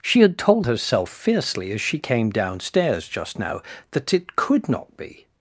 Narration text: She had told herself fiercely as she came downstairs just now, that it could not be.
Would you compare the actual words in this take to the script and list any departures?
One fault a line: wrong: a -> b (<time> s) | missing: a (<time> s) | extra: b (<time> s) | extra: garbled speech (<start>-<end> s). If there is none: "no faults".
no faults